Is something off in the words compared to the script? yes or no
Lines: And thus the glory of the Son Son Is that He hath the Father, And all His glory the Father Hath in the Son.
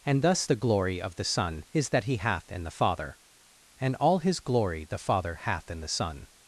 yes